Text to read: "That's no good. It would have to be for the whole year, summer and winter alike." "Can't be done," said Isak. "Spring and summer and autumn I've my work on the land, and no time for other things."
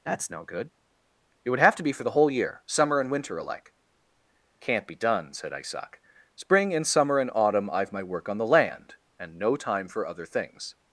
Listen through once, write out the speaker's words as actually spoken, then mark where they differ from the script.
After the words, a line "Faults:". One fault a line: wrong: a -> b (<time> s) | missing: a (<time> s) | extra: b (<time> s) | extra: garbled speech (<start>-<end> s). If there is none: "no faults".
"That's no good. It would have to be for the whole year, summer and winter alike." "Can't be done," said Isak. "Spring and summer and autumn I've my work on the land, and no time for other things."
Faults:
no faults